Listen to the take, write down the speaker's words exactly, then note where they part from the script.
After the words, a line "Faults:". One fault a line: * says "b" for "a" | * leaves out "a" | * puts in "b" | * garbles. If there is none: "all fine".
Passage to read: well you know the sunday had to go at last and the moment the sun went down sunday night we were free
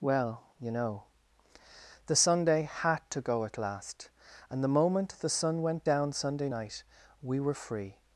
well you know the sunday had to go at last and the moment the sun went down sunday night we were free
Faults:
all fine